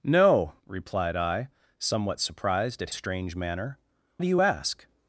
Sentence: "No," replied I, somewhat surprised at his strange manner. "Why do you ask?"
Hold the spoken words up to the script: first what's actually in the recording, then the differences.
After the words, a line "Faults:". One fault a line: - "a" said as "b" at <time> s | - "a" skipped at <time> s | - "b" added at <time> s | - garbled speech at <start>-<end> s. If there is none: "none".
"No," replied I, somewhat surprised at strange manner. "Do you ask?"
Faults:
- "his" skipped at 2.9 s
- "Why" skipped at 3.8 s